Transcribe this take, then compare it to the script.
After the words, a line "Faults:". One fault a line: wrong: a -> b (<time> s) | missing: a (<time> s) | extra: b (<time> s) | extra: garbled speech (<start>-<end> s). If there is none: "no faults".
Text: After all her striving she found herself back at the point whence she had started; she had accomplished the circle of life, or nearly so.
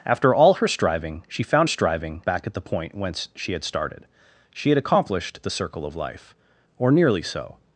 After all her striving she found striving back at the point whence she had started; she had accomplished the circle of life, or nearly so.
Faults:
wrong: herself -> striving (1.7 s)